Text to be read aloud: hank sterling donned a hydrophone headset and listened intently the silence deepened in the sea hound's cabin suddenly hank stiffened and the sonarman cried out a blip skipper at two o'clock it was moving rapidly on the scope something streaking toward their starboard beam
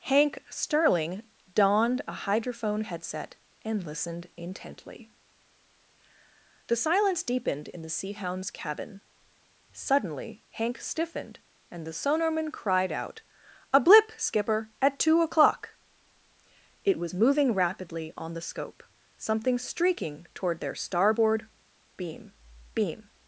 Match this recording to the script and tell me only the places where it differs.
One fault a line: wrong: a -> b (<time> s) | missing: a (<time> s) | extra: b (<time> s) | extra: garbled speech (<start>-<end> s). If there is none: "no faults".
extra: beam (22.7 s)